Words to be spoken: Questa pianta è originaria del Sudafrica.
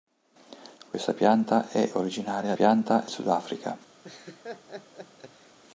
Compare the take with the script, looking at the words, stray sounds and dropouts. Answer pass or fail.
fail